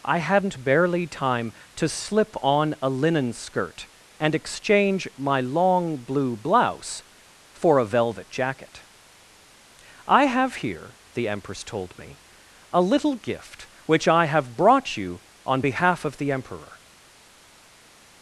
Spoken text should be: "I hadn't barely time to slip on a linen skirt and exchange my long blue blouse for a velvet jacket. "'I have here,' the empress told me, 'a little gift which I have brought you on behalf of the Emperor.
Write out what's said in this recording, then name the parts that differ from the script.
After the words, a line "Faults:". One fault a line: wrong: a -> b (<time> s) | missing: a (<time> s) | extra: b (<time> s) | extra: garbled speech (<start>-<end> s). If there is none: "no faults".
"I hadn't barely time to slip on a linen skirt and exchange my long blue blouse for a velvet jacket. "'I have here,' the empress told me, 'a little gift which I have brought you on behalf of the Emperor.
Faults:
no faults